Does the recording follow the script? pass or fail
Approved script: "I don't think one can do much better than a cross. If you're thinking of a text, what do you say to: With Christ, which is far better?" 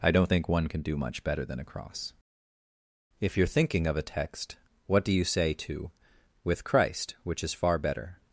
pass